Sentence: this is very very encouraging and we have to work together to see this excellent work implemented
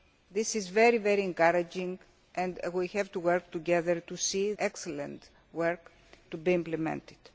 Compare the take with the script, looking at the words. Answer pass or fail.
fail